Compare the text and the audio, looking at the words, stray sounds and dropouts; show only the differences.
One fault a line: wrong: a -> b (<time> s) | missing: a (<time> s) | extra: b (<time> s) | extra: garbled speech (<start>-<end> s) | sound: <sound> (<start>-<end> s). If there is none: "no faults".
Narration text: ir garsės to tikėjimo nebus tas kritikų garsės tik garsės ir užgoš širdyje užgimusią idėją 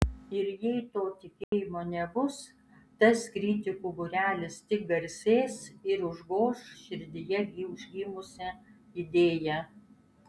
wrong: garsės -> jei (0.6 s)
sound: dropout (1.4-1.5 s)
wrong: garsės -> būrelis (4.0 s)